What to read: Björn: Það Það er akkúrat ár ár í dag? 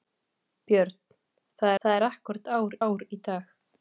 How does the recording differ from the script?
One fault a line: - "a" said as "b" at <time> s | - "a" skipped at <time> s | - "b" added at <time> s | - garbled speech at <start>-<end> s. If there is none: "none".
none